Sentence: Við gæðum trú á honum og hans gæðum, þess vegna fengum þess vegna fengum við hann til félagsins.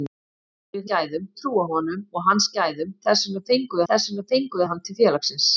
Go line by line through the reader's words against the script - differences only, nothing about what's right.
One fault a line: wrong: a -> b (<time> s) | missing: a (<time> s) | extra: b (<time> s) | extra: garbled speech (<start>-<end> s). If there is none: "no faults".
no faults